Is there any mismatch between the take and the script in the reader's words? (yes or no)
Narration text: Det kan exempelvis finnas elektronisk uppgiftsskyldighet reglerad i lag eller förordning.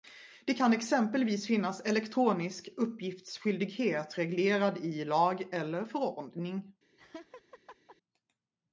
no